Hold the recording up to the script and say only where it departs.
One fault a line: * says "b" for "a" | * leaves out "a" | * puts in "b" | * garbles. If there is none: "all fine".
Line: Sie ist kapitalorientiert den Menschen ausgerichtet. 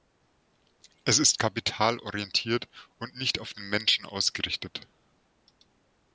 * says "Es" for "Sie"
* puts in "und nicht auf"